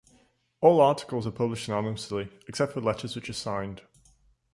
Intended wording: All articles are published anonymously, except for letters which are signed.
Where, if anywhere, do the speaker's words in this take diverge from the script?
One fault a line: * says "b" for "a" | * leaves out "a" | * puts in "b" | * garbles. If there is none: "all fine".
all fine